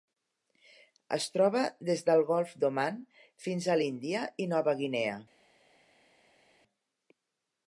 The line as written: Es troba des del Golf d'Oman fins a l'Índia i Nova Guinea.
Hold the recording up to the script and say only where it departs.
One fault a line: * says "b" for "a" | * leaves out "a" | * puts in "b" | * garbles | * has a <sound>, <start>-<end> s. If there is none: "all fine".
all fine